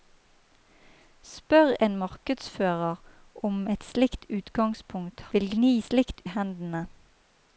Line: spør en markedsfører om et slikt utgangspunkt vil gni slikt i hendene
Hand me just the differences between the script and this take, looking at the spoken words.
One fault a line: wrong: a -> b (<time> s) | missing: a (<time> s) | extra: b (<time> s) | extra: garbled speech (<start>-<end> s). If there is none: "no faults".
no faults